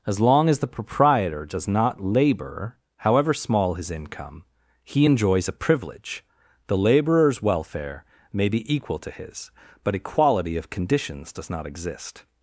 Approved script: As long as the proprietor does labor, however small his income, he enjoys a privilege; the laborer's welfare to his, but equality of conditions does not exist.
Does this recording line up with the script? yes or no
no